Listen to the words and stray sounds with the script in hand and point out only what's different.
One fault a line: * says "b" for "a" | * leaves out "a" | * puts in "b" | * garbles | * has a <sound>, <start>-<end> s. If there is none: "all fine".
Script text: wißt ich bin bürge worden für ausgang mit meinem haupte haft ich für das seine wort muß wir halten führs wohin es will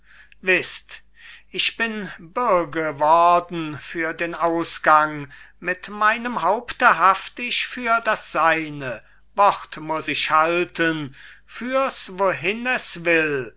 * puts in "den"
* says "ich" for "wir"